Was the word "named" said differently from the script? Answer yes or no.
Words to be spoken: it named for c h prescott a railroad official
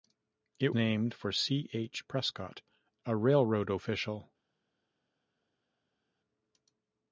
no